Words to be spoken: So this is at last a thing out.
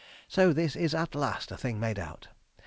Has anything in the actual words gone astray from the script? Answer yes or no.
yes